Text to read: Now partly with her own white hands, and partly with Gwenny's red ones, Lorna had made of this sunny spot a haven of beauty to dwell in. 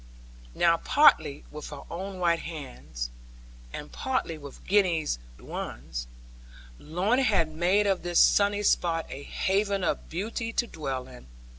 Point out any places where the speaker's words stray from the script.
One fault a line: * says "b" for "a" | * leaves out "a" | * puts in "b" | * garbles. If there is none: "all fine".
* leaves out "red"